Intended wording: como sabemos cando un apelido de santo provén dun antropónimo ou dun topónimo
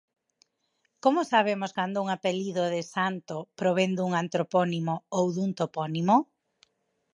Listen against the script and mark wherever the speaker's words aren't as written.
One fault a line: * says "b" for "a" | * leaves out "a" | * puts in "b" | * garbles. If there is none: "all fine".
all fine